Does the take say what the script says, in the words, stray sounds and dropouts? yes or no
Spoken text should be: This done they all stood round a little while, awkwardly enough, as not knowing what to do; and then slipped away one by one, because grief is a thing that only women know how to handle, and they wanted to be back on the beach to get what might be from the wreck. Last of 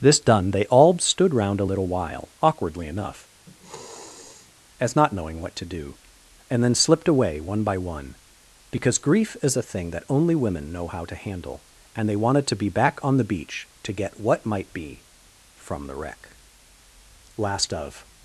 no